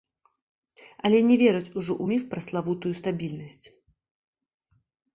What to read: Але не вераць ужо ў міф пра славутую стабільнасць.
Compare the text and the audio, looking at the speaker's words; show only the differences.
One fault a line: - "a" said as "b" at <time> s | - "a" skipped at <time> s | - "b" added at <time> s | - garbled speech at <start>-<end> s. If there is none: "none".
none